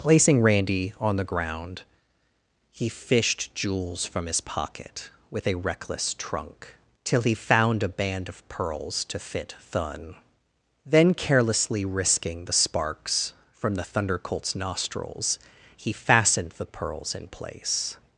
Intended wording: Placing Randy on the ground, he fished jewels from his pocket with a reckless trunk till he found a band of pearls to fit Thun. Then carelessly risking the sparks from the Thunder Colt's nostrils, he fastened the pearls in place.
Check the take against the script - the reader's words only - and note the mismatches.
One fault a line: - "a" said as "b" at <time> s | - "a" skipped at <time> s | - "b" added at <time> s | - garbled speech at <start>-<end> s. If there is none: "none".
none